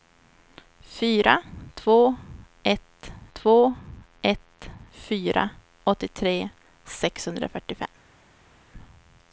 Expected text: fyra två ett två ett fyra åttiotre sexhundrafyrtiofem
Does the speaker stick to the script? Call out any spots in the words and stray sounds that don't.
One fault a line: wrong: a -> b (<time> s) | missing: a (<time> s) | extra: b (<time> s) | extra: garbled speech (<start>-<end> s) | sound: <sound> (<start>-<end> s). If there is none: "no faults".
no faults